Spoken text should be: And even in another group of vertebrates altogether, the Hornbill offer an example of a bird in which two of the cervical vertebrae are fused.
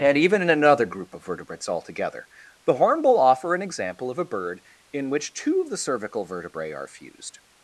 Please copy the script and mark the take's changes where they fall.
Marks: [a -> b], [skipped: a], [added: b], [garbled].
And even in another group of vertebrates altogether, the Hornbill offer an example of a bird in which two of the cervical vertebrae are fused.